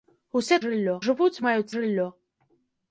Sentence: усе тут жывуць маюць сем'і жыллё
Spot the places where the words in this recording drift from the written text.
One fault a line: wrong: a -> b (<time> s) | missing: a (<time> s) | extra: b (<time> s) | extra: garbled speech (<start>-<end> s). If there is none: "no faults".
wrong: тут -> жыллё (0.6 s)
missing: сем'і (1.7 s)